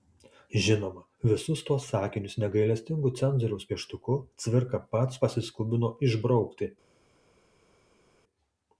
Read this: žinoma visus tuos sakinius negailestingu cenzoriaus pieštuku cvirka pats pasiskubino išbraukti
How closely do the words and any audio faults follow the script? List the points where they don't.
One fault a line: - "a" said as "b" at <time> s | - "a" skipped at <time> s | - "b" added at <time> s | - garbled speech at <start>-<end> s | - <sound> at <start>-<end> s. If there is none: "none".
none